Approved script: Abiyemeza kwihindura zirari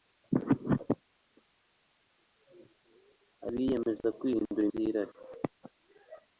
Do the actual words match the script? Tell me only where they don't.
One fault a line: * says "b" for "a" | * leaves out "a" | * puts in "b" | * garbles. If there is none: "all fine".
all fine